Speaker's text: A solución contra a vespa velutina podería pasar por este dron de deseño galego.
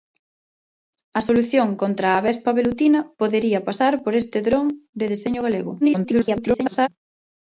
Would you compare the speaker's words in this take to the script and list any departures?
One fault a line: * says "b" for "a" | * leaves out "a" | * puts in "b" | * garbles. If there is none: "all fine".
* garbles